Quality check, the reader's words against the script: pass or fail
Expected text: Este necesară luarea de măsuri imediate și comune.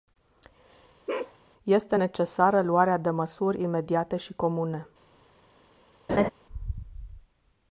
pass